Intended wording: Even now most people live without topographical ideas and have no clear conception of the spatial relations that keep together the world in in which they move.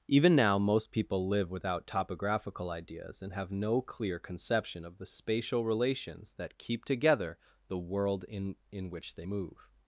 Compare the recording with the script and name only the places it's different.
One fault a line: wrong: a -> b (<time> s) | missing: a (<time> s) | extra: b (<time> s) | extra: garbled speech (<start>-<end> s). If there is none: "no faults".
no faults